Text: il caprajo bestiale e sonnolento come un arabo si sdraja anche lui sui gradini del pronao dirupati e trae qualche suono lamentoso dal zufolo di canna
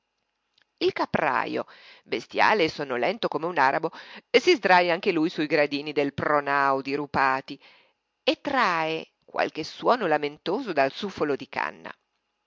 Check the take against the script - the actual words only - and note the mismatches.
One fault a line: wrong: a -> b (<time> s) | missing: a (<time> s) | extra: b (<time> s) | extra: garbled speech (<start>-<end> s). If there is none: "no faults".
no faults